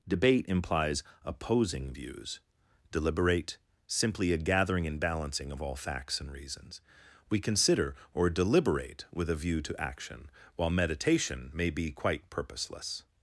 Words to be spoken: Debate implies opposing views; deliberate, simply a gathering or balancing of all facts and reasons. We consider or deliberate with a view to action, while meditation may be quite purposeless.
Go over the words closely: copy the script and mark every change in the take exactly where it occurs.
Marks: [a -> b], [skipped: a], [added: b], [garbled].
Debate implies opposing views; deliberate, simply a gathering [or -> and] balancing of all facts and reasons. We consider or deliberate with a view to action, while meditation may be quite purposeless.